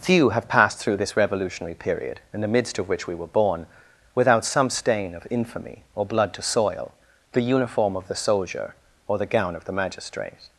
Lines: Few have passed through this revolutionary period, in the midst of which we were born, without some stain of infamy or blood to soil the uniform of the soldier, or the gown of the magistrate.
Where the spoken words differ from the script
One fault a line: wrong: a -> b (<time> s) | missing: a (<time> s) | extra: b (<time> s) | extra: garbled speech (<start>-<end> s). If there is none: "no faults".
no faults